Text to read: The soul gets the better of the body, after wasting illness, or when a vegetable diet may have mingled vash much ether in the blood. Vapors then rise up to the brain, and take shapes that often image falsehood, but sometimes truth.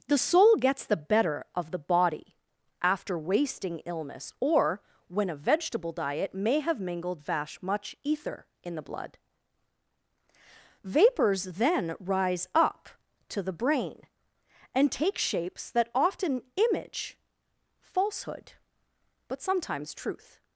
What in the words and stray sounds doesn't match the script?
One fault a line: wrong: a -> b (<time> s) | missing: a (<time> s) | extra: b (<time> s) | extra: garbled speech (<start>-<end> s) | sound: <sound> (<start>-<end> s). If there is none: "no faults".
no faults